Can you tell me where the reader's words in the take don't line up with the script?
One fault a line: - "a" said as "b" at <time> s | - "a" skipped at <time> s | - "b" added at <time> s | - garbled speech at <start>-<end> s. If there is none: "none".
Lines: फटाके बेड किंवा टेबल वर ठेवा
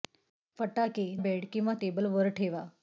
none